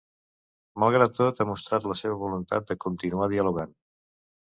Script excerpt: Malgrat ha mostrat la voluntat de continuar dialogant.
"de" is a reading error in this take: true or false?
false